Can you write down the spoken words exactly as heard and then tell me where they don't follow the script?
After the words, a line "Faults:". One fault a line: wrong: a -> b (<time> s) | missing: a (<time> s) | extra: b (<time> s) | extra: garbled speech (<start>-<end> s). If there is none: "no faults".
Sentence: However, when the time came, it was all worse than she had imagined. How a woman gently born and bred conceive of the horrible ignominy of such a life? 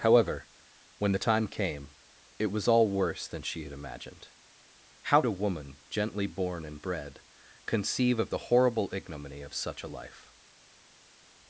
However, when the time came, it was all worse than she had imagined. How a woman gently born and bred conceive of the horrible ignominy of such a life?
Faults:
no faults